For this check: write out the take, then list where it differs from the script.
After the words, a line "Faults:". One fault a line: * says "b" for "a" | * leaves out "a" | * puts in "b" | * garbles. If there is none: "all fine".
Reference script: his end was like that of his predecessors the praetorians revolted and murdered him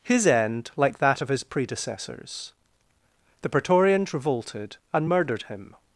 his end like that of his predecessors the praetorians revolted and murdered him
Faults:
* leaves out "was"